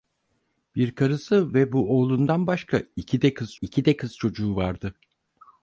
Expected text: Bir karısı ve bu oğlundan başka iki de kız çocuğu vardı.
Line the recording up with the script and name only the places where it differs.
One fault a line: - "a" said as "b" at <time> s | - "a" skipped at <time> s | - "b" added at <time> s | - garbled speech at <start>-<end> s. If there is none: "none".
- "iki de kız" added at 3.6 s